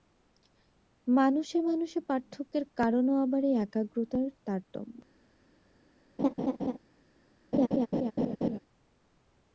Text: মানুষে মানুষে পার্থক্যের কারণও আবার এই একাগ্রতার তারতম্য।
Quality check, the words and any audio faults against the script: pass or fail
fail